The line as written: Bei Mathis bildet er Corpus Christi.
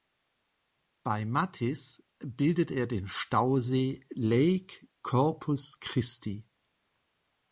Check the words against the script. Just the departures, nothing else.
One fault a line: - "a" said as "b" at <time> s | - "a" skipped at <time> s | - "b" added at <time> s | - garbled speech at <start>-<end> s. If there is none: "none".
- "den Stausee Lake" added at 2.9 s